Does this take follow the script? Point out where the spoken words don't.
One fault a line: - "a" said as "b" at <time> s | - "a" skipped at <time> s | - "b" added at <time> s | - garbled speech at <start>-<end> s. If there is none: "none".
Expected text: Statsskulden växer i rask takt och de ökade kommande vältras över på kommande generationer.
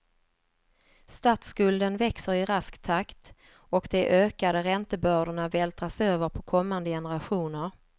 - "kommande" said as "räntebördorna" at 4.6 s